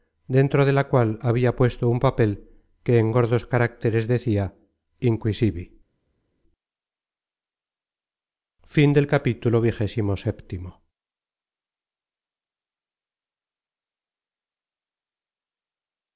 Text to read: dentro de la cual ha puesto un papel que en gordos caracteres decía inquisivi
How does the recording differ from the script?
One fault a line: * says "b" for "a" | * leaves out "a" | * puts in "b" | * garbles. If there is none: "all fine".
* says "había" for "ha"